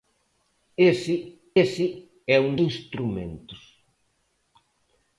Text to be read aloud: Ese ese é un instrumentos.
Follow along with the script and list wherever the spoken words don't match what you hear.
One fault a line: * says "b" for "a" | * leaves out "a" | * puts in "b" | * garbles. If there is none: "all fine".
all fine